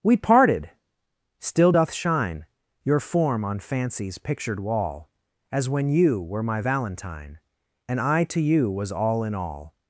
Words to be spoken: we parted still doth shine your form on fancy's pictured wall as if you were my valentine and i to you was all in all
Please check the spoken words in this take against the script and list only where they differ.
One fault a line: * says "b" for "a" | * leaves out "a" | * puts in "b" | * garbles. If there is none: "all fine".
* says "when" for "if"